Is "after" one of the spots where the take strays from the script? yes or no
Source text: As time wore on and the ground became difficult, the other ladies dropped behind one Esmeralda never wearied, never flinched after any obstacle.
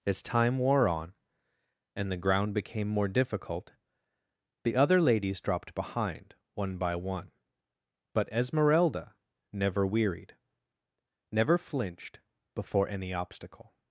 yes